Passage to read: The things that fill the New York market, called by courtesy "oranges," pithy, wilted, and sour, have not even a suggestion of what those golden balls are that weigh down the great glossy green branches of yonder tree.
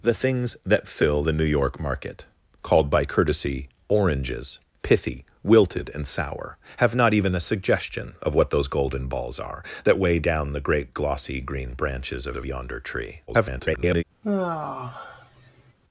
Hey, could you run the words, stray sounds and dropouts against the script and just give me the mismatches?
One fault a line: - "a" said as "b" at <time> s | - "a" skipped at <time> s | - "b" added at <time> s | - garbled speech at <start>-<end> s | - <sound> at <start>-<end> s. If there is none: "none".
- "of" added at 12.3 s
- garbled speech at 13.3-14.0 s
- sigh at 14.2-15.7 s